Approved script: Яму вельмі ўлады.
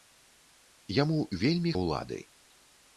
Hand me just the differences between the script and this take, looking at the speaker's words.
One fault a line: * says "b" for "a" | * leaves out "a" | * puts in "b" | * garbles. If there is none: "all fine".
all fine